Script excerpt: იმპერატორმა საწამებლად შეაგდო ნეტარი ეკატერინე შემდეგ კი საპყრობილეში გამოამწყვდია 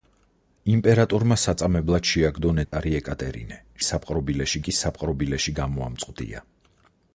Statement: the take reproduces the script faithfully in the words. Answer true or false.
false